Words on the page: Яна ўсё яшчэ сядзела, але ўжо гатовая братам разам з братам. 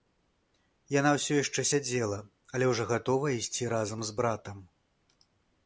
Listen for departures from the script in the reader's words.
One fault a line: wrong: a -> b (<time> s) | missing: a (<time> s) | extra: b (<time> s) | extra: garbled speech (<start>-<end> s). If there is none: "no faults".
wrong: братам -> ісці (3.4 s)